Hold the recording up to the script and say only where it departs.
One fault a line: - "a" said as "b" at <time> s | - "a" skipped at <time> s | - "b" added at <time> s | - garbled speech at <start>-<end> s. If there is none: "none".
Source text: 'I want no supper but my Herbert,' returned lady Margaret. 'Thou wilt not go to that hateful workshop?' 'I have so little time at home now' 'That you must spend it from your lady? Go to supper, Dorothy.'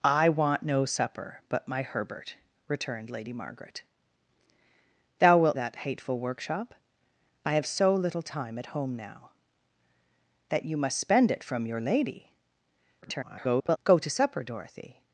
- "not go to" skipped at 5.6 s
- garbled speech at 13.0-13.8 s